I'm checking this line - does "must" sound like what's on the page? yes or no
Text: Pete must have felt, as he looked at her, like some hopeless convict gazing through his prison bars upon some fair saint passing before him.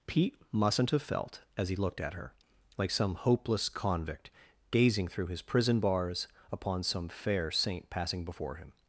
no